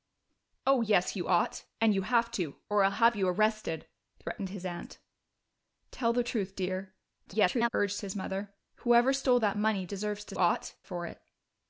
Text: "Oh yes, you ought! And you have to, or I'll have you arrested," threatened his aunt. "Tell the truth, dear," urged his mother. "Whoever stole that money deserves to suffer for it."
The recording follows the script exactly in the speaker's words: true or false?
false